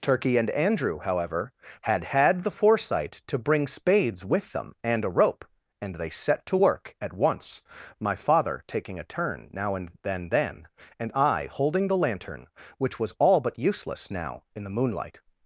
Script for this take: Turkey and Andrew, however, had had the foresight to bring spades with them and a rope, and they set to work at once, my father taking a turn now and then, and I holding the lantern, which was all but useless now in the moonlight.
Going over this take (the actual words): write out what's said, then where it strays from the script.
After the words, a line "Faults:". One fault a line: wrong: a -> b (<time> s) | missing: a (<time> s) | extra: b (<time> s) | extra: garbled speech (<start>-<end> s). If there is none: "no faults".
Turkey and Andrew, however, had had the foresight to bring spades with them and a rope, and they set to work at once, my father taking a turn now and then then, and I holding the lantern, which was all but useless now in the moonlight.
Faults:
extra: then (10.3 s)